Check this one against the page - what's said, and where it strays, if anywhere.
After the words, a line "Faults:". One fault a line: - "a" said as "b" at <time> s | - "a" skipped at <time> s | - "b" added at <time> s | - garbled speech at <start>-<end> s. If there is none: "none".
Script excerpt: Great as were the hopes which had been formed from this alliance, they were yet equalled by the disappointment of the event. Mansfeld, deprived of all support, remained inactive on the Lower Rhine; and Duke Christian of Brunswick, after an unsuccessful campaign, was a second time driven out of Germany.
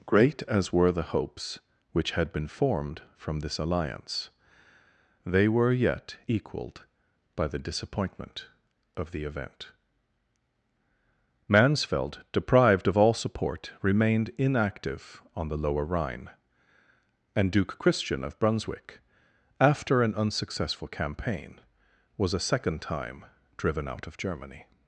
Great as were the hopes which had been formed from this alliance, they were yet equalled by the disappointment of the event. Mansfeld, deprived of all support, remained inactive on the Lower Rhine; and Duke Christian of Brunswick, after an unsuccessful campaign, was a second time driven out of Germany.
Faults:
none